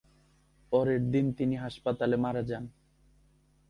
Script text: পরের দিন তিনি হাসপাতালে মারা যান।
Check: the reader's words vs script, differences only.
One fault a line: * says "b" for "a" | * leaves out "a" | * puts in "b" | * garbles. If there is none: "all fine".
all fine